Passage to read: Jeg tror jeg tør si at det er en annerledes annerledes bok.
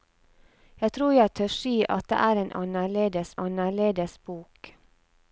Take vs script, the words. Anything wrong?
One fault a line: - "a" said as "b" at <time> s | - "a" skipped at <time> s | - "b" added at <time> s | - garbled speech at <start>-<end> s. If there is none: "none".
none